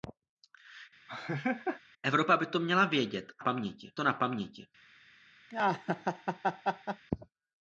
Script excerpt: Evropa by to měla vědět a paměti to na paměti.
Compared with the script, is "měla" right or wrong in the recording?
right